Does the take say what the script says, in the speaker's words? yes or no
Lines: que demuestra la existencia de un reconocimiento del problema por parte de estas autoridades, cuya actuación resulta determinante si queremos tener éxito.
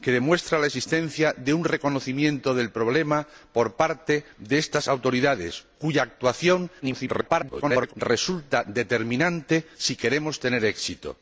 no